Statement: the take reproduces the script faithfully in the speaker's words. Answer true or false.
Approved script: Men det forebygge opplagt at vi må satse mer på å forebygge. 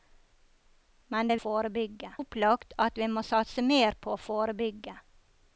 true